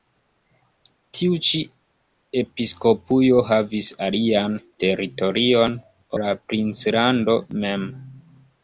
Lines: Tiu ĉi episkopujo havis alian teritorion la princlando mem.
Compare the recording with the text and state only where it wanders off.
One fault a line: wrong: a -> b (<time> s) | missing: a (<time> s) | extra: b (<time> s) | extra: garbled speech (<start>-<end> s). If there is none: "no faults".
no faults